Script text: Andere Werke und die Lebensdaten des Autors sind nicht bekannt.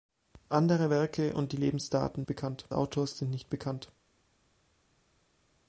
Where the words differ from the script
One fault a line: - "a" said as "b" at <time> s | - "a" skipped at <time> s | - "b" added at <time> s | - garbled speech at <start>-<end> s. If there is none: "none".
- "des" said as "bekannt" at 2.3 s